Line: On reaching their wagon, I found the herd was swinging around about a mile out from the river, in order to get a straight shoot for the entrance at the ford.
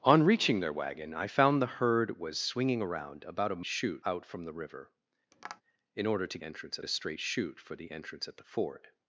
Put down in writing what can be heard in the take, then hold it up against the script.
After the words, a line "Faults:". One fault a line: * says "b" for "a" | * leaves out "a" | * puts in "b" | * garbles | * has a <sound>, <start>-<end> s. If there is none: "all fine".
On reaching their wagon, I found the herd was swinging around about a shoot out from the river, in order to entrance a straight shoot for the entrance at the ford.
Faults:
* says "shoot" for "mile"
* has a tap, 5.3-5.6 s
* says "entrance" for "get"